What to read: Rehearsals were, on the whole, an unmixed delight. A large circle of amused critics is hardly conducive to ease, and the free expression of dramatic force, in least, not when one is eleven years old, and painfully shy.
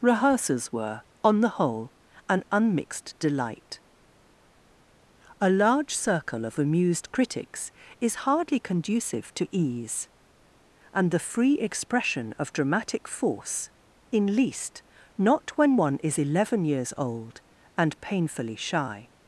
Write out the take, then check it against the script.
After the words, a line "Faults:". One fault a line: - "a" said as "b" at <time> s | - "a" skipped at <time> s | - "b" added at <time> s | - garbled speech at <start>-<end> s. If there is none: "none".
Rehearsals were, on the whole, an unmixed delight. A large circle of amused critics is hardly conducive to ease, and the free expression of dramatic force, in least, not when one is eleven years old, and painfully shy.
Faults:
none